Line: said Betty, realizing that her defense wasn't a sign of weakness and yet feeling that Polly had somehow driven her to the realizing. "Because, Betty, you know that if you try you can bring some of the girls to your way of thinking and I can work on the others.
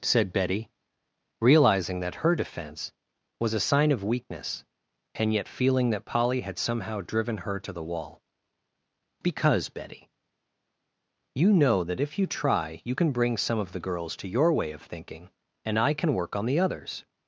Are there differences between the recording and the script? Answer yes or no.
yes